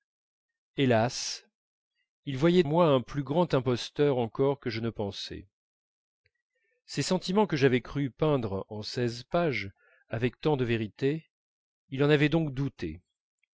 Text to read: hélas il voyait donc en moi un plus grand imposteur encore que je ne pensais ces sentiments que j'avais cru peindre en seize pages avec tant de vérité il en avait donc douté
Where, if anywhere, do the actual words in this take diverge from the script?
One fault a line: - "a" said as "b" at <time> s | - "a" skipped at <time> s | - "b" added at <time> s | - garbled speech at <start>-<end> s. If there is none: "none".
- "donc en" skipped at 2.6 s